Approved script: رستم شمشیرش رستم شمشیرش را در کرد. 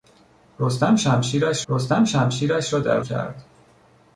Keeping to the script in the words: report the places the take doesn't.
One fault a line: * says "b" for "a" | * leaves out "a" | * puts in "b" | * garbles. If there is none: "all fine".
all fine